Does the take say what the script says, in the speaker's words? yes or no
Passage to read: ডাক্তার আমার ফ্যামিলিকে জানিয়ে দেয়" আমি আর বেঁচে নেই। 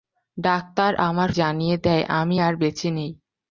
no